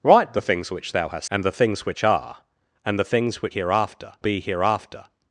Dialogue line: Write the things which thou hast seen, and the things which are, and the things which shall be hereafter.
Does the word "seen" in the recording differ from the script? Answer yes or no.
yes